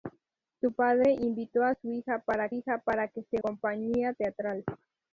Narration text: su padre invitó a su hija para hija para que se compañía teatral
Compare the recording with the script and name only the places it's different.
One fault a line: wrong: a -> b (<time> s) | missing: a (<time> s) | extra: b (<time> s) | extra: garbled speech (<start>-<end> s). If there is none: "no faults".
no faults